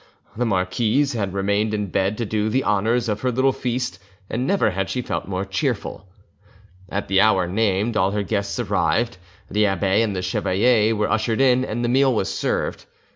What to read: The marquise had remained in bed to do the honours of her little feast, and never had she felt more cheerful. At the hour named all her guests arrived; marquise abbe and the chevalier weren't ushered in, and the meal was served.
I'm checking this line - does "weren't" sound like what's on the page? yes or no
no